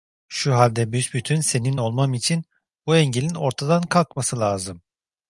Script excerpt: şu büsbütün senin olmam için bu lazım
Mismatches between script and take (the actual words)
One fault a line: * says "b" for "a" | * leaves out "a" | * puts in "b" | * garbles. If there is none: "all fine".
* puts in "halde"
* puts in "engelin ortadan kalkması"